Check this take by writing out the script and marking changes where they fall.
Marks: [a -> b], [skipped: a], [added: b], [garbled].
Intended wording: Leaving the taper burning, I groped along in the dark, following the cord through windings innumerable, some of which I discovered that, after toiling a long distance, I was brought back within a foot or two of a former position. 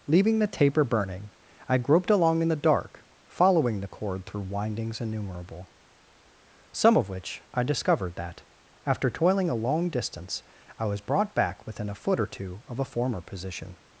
Leaving the taper burning, I groped along in the dark, following the cord through windings innumerable, some of which I discovered that, after toiling a long distance, I was brought back within a foot or two of a former position.